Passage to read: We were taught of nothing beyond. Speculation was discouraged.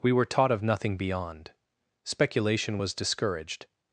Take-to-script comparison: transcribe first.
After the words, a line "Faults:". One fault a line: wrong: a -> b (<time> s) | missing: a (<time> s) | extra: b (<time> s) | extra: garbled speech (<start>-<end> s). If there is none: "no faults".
We were taught of nothing beyond. Speculation was discouraged.
Faults:
no faults